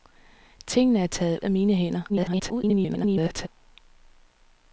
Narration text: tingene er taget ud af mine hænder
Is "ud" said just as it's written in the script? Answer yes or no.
no